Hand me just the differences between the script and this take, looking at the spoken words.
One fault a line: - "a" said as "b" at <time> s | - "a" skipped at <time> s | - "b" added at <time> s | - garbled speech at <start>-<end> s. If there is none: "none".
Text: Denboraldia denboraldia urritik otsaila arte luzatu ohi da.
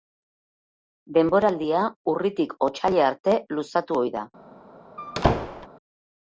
- "denboraldia" skipped at 1.8 s